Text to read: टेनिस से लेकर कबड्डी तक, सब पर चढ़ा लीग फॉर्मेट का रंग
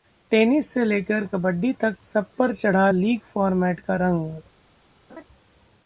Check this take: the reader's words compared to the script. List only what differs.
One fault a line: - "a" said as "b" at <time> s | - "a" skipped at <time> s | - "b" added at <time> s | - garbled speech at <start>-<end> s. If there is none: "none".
none